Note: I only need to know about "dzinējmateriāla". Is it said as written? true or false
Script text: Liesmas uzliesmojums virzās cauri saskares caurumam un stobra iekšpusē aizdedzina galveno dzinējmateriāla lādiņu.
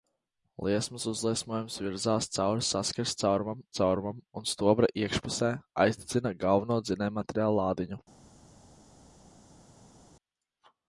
true